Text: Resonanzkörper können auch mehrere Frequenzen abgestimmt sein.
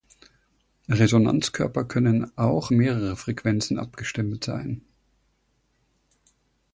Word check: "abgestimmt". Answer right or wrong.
right